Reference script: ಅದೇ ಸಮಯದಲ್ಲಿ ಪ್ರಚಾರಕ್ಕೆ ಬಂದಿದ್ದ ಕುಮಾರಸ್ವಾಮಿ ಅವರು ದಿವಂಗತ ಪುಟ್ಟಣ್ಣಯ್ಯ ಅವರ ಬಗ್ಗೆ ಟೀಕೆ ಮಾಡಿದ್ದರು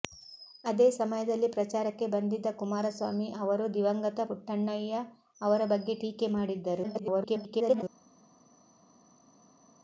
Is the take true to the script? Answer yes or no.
no